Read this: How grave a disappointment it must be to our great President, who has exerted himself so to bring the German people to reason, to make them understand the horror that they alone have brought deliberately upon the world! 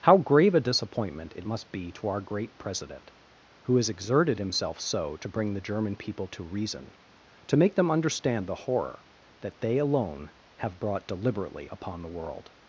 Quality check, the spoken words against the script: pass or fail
pass